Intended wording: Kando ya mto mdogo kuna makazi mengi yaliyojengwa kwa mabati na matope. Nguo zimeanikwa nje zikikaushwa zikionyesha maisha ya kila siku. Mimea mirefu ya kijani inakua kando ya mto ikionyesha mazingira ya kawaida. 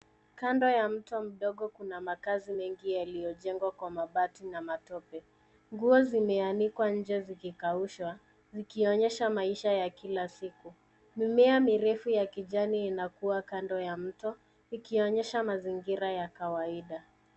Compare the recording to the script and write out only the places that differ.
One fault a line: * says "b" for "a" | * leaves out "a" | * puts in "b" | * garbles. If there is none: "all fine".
all fine